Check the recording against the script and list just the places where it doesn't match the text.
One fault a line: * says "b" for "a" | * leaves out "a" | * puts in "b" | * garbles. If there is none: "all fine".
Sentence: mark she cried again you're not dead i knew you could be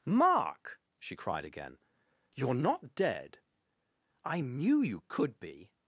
all fine